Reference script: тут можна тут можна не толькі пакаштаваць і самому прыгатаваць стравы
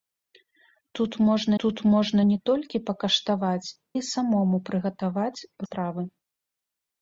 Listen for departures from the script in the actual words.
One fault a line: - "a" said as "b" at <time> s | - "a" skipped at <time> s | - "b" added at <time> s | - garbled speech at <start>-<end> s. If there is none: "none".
none